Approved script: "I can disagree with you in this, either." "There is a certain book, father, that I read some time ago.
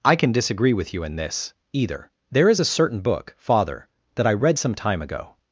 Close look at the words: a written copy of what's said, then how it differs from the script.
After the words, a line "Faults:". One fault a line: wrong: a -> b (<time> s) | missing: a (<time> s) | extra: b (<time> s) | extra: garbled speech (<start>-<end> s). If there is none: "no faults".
"I can disagree with you in this, either." "There is a certain book, father, that I read some time ago.
Faults:
no faults